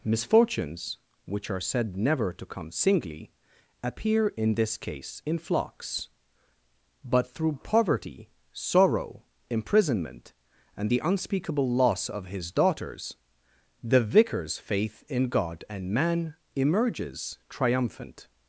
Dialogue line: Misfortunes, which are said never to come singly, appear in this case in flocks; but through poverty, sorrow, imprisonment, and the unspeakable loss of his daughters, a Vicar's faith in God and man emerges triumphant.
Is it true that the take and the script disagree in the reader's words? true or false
true